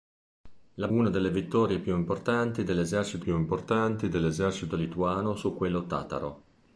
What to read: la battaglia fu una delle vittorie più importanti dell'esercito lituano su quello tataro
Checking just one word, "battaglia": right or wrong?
wrong